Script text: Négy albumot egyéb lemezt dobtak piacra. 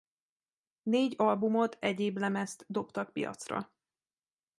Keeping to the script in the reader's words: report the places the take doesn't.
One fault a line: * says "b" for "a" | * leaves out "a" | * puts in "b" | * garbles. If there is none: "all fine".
all fine